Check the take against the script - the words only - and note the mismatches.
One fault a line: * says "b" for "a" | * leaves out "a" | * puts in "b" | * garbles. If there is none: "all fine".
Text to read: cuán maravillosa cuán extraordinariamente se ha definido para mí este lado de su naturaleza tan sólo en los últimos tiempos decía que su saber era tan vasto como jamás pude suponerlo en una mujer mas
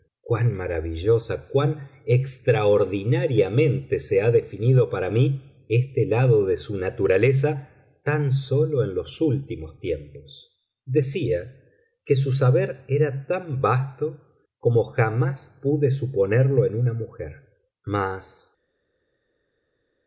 all fine